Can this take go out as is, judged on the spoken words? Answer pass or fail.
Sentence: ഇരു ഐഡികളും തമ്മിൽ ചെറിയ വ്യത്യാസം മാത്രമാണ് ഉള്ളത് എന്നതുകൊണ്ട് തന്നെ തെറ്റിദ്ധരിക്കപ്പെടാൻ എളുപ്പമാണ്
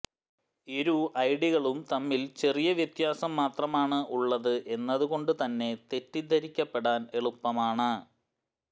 pass